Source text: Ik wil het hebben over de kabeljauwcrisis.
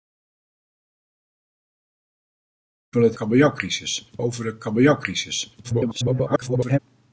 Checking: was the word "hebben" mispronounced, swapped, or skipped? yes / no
yes